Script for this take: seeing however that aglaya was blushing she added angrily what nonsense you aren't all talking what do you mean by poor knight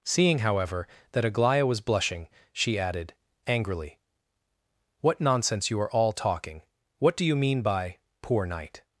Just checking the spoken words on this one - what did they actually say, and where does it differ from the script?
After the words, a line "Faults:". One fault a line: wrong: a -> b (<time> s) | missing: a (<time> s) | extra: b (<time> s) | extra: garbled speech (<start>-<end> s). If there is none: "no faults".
seeing however that aglaya was blushing she added angrily what nonsense you are all talking what do you mean by poor knight
Faults:
wrong: aren't -> are (5.8 s)